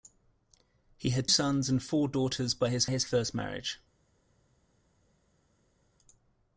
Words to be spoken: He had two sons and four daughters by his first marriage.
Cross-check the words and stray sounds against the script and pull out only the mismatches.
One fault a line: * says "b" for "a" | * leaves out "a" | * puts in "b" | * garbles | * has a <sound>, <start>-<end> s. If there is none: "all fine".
* leaves out "two"
* puts in "his"